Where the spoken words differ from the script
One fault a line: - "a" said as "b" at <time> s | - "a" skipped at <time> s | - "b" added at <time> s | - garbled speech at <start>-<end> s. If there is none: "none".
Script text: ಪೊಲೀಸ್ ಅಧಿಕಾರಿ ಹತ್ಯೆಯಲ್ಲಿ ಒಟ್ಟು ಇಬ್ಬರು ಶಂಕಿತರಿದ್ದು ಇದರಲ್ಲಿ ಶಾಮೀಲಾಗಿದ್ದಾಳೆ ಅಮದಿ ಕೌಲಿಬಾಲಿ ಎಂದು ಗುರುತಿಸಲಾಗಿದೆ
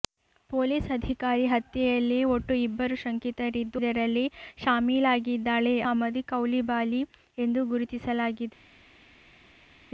none